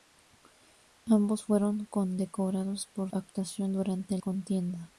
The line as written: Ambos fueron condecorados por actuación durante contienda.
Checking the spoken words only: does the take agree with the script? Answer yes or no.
yes